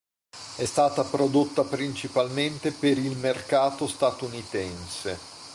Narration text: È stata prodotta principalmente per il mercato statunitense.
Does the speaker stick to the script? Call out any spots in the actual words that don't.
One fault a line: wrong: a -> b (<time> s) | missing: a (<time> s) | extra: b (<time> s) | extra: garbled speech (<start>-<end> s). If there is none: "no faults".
no faults